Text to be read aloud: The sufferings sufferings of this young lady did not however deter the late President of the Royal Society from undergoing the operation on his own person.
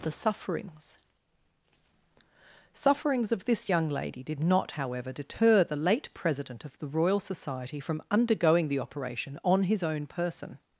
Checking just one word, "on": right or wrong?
right